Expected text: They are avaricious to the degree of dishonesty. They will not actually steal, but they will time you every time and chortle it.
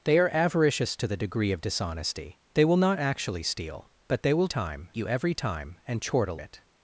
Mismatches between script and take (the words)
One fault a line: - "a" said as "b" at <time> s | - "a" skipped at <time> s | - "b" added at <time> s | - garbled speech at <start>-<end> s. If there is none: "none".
none